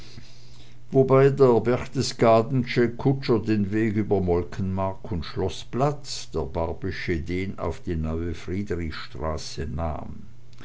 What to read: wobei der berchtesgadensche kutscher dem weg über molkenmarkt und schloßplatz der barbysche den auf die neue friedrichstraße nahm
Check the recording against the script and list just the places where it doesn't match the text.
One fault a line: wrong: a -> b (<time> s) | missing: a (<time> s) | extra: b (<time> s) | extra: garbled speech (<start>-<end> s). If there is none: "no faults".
wrong: dem -> den (3.4 s)